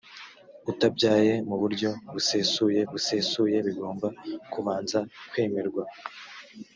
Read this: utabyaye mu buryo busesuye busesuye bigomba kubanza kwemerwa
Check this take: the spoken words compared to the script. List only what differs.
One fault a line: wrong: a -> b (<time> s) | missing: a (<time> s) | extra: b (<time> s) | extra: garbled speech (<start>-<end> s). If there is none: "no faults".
no faults